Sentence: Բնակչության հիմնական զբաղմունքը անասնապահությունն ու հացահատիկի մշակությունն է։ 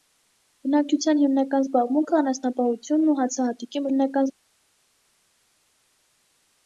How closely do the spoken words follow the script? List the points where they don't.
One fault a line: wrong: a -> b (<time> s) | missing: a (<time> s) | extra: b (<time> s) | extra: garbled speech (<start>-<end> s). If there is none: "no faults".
wrong: մշակությունն -> հիմնական (3.9 s)